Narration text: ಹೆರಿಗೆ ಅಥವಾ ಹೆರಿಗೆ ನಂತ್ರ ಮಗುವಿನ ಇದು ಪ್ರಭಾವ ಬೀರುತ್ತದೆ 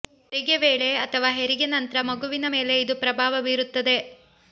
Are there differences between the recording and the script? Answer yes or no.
yes